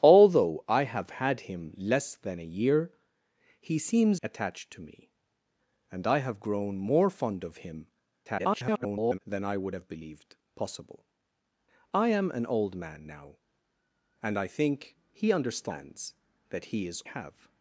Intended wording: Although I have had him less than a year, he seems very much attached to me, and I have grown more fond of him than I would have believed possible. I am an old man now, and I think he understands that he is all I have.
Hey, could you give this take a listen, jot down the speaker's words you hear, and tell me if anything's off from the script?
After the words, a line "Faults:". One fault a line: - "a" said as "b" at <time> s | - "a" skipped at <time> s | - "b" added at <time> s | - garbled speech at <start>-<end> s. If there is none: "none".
Although I have had him less than a year, he seems attached to me, and I have grown more fond of him [garbled] than I would have believed possible. I am an old man now, and I think he understands that he is have.
Faults:
- "very much" skipped at 4.2 s
- garbled speech at 8.2-9.2 s
- "all I" skipped at 17.0 s